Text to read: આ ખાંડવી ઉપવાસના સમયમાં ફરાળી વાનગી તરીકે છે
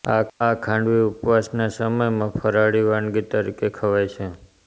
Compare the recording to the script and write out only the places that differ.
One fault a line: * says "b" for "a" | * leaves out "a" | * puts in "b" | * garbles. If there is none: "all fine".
* puts in "ખવાય"